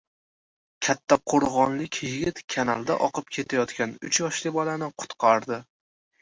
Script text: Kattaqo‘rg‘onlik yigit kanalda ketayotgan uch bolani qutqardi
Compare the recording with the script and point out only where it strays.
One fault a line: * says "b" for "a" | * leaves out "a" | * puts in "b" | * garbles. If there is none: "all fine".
* puts in "oqib"
* puts in "yoshli"